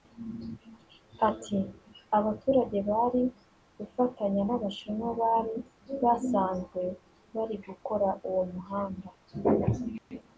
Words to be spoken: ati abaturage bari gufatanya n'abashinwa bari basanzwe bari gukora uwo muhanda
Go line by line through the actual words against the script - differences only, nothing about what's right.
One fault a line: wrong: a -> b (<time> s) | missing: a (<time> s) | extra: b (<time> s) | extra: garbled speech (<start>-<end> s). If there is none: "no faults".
no faults